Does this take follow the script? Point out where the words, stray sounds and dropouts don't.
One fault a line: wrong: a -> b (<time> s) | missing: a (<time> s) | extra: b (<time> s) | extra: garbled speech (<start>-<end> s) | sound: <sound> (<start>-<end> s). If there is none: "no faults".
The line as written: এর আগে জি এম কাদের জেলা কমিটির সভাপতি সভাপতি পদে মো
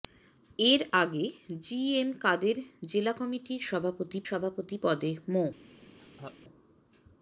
sound: laugh (6.0-6.4 s)